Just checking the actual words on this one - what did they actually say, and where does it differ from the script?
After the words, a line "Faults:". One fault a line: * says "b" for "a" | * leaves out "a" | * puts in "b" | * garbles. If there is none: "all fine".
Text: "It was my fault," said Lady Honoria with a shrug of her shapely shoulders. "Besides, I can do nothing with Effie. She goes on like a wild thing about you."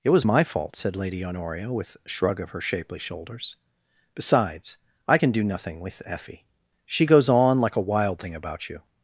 "It was my fault," said Lady Honoria with a shrug of her shapely shoulders. "Besides, I can do nothing with Effie. She goes on like a wild thing about you."
Faults:
all fine